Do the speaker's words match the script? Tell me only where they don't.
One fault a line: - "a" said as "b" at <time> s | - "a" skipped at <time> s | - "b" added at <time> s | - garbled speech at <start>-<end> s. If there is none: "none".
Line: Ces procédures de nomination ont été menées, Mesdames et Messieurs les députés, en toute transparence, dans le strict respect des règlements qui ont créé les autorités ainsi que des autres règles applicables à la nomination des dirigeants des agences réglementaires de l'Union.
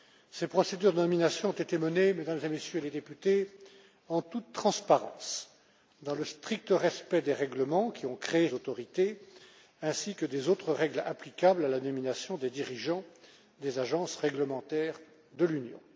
- "les" skipped at 8.5 s